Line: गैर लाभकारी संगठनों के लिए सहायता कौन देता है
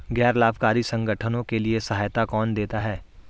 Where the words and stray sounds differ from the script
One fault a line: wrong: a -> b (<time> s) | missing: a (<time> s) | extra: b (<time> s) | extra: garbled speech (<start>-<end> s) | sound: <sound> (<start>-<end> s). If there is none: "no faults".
no faults